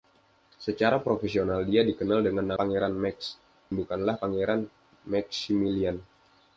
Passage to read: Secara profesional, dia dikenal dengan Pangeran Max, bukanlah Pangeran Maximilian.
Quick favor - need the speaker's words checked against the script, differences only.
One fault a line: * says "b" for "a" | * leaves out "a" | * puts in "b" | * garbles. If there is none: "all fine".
all fine